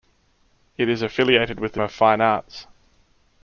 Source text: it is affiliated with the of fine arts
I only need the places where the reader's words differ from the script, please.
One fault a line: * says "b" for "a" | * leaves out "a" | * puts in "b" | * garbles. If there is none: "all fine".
all fine